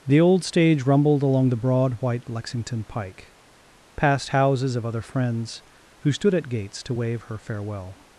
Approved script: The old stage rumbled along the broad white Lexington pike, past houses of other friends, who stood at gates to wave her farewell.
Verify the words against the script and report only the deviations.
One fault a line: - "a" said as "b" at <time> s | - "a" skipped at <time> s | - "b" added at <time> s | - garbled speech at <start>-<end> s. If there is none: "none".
none